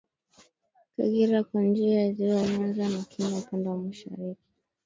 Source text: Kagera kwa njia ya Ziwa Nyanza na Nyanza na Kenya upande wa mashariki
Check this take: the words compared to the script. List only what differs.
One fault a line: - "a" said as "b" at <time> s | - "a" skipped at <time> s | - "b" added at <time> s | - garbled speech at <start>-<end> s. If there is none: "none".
- "Nyanza na" skipped at 3.0 s